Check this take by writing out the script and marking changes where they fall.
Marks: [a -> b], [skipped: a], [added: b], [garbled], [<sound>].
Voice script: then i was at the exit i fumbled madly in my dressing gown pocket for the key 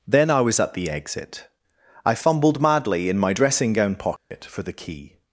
then i was at the exit i fumbled madly in my dressing gown pocket [dropout] for the key